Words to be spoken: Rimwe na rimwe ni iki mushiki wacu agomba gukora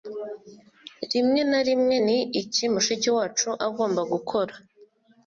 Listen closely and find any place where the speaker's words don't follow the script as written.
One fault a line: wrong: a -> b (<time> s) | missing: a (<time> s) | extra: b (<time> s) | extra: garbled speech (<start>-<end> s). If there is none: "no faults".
no faults